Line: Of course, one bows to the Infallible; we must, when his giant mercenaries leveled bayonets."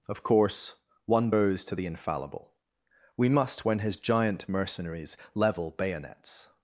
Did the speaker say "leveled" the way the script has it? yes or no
no